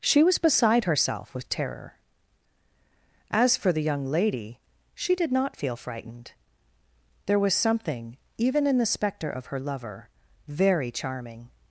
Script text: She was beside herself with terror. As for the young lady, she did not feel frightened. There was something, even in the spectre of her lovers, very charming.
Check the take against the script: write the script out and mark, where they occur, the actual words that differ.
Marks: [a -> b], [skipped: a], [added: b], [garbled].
She was beside herself with terror. As for the young lady, she did not feel frightened. There was something, even in the spectre of her [lovers, -> lover] very charming.